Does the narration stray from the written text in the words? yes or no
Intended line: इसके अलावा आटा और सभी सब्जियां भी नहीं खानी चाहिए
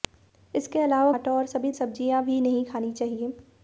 no